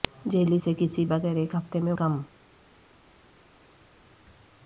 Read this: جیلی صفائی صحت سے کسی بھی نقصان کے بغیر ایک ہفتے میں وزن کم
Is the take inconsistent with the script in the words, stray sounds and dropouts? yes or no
yes